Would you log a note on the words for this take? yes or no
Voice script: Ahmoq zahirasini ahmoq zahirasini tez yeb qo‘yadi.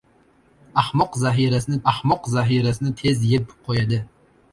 no